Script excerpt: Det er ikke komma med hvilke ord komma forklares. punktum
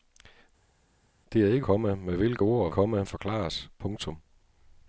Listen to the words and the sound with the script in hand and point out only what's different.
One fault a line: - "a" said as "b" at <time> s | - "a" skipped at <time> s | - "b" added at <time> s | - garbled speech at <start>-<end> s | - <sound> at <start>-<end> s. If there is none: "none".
none